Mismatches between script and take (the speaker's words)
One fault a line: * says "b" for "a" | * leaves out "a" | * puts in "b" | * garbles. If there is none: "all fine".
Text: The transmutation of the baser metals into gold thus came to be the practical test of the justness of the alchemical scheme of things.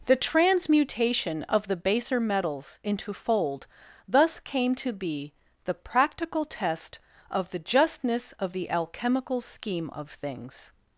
* says "fold" for "gold"